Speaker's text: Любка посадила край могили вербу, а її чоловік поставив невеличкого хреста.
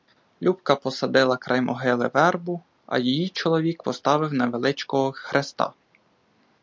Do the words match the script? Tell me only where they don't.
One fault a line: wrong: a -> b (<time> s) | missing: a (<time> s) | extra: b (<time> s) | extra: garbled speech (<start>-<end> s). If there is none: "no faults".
no faults